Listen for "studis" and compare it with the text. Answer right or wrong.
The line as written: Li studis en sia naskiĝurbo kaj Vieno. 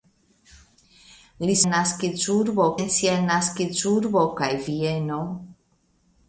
wrong